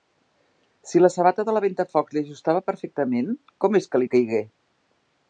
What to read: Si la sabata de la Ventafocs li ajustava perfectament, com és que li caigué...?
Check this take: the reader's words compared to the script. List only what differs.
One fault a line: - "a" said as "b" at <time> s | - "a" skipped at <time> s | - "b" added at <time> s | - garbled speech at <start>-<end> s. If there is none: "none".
none